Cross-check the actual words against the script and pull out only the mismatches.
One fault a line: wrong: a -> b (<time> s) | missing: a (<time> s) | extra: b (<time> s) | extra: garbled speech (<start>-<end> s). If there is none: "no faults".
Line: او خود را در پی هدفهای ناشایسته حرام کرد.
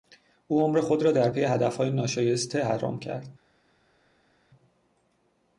extra: عمر (0.6 s)